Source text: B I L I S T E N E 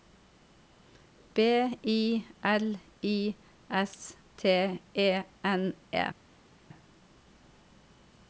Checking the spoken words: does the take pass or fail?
pass